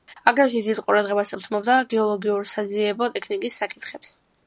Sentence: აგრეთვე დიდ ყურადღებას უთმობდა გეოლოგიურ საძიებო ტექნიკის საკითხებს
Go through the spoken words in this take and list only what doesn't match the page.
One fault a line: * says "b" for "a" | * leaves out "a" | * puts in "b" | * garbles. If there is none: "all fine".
all fine